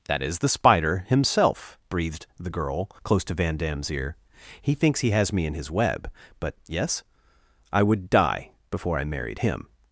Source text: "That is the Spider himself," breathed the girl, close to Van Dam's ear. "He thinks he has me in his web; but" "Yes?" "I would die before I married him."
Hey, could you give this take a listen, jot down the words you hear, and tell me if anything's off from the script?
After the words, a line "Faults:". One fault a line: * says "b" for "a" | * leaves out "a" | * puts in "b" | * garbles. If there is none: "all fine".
"That is the Spider himself," breathed the girl, close to Van Dam's ear. "He thinks he has me in his web; but" "Yes?" "I would die before I married him."
Faults:
all fine